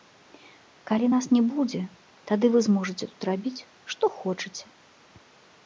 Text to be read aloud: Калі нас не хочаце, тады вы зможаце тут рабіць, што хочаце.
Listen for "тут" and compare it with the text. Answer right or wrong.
right